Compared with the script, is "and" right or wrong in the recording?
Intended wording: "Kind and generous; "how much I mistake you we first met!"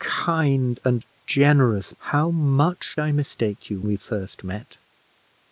right